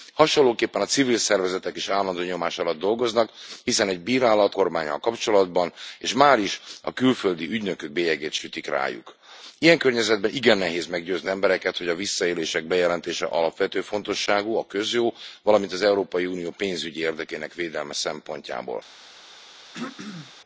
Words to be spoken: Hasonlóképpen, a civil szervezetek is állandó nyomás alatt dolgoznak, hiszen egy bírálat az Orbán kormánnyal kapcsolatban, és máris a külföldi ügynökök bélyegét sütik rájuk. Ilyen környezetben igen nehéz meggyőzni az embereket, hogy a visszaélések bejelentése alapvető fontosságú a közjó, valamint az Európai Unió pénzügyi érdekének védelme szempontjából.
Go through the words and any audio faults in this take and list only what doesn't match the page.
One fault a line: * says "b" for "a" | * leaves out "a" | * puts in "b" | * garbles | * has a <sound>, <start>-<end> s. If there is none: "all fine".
* leaves out "az Orbán"
* leaves out "az"
* has a throat clearing, 19.7-20.3 s